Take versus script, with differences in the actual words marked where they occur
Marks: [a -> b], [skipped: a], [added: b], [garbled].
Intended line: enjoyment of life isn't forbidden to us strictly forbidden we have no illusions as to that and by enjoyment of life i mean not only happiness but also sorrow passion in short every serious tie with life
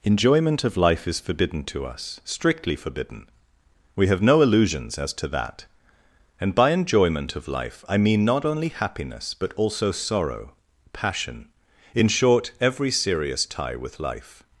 enjoyment of life [isn't -> is] forbidden to us strictly forbidden we have no illusions as to that and by enjoyment of life i mean not only happiness but also sorrow passion in short every serious tie with life